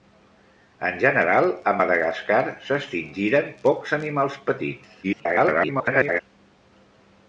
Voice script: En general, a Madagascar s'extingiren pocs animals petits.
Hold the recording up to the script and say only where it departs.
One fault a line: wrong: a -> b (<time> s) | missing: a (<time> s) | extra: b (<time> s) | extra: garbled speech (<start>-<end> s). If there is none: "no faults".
extra: garbled speech (5.0-6.2 s)